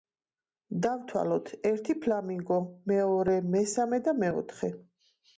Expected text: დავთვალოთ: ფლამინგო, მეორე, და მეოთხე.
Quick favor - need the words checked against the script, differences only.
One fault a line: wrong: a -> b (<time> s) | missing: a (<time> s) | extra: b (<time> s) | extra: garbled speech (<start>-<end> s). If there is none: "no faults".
extra: ერთი (1.7 s)
extra: მესამე (3.6 s)